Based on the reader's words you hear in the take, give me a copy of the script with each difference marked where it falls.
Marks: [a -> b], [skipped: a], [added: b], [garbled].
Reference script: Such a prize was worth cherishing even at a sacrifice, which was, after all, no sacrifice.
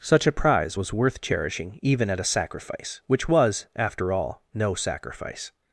Such a prize was worth cherishing even at a sacrifice, which was, after all, no sacrifice.